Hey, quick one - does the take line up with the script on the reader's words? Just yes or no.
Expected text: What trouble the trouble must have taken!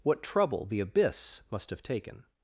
no